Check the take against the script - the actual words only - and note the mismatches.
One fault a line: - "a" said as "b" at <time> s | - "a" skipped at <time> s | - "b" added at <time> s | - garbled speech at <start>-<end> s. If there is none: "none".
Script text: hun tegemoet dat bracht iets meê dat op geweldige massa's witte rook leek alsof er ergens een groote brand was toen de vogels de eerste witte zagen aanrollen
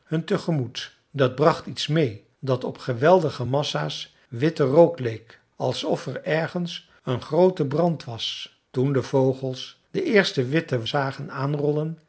none